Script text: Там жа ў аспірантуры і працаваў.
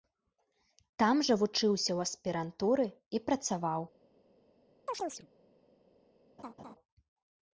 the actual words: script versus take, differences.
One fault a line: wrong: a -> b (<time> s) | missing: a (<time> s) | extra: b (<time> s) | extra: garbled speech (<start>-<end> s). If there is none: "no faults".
extra: вучыўся (1.4 s)